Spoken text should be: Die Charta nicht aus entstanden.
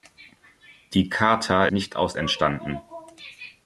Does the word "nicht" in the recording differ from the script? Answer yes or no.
no